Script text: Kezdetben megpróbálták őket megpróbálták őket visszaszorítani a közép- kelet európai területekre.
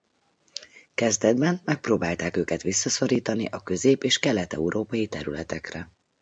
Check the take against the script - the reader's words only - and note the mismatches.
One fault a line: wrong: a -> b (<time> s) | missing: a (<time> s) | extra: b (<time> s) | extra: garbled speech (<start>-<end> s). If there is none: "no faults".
missing: megpróbálták őket (2.6 s)
extra: és (4.0 s)